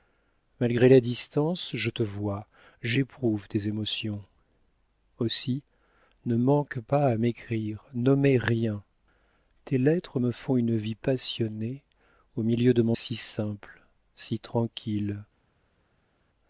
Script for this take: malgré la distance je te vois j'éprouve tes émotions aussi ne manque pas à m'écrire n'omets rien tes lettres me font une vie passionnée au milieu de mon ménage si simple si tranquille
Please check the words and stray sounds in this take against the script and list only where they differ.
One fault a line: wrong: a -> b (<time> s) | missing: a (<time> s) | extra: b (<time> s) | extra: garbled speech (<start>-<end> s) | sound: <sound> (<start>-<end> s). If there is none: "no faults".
missing: ménage (12.9 s)